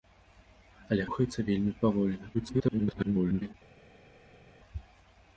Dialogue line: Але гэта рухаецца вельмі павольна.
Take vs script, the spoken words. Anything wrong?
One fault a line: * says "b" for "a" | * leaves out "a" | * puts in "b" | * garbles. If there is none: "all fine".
* leaves out "гэта"
* garbles